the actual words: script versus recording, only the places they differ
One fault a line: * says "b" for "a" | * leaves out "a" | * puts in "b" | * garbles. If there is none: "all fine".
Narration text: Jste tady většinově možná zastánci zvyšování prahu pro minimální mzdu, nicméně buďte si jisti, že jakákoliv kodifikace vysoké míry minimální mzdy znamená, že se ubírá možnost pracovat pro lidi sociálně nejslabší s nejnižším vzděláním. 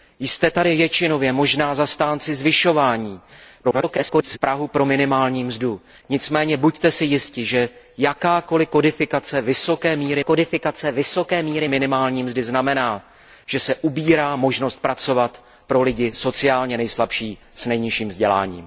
* garbles
* puts in "kodifikace vysoké míry"